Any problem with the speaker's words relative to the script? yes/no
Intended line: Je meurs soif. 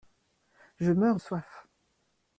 no